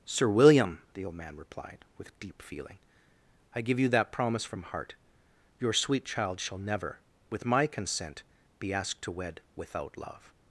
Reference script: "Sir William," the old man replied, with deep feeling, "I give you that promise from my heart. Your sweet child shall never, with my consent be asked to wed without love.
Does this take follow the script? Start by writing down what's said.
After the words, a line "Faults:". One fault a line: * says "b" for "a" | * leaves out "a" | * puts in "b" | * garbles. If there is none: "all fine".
"Sir William," the old man replied, with deep feeling, "I give you that promise from heart. Your sweet child shall never, with my consent be asked to wed without love.
Faults:
* leaves out "my"